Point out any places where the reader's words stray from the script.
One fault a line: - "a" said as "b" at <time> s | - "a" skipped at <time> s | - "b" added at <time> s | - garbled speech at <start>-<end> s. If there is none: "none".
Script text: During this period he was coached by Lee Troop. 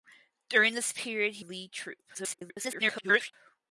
- "was coached by" skipped at 1.4 s
- garbled speech at 2.1-3.3 s